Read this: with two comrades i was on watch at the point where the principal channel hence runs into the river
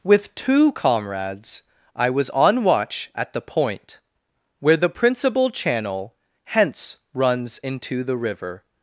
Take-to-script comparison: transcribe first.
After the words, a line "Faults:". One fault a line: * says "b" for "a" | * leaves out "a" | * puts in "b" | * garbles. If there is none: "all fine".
with two comrades i was on watch at the point where the principal channel hence runs into the river
Faults:
all fine